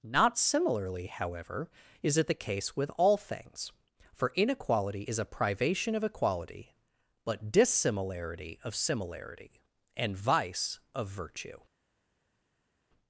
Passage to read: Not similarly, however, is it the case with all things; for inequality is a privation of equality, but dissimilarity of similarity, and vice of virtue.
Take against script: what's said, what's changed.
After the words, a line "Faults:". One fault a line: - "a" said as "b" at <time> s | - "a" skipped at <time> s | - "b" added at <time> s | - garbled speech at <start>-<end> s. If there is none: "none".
Not similarly, however, is it the case with all things; for inequality is a privation of equality, but dissimilarity of similarity, and vice of virtue.
Faults:
none